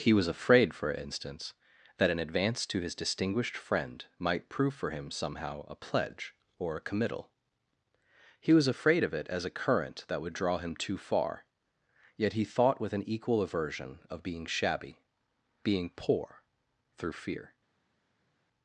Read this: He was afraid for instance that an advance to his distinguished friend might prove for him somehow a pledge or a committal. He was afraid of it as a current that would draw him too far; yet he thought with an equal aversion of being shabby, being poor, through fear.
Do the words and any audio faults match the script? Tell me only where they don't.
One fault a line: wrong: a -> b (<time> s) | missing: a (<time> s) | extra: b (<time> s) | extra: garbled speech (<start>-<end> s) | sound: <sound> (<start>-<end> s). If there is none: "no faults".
no faults